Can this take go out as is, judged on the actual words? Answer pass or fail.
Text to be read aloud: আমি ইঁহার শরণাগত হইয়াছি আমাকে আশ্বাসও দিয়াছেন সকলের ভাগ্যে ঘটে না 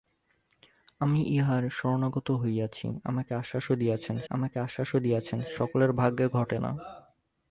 fail